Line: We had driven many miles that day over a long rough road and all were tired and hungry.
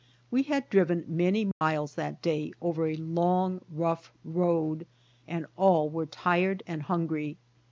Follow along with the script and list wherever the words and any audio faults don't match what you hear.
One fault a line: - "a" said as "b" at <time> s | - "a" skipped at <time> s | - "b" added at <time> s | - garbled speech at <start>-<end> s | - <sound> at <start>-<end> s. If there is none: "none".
- dropout at 1.5-1.6 s